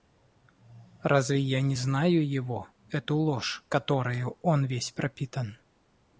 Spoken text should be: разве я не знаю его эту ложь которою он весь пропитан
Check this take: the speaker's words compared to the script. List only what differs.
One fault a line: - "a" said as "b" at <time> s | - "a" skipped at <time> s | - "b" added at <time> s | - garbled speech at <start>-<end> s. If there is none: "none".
none